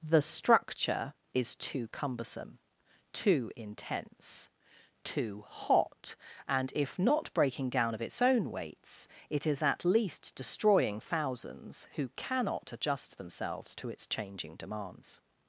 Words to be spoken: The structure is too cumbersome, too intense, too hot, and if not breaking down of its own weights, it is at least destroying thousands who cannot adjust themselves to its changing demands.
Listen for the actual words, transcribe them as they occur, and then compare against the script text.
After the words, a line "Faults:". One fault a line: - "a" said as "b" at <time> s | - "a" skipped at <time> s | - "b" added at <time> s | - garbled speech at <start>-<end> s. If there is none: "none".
The structure is too cumbersome, too intense, too hot, and if not breaking down of its own weights, it is at least destroying thousands who cannot adjust themselves to its changing demands.
Faults:
none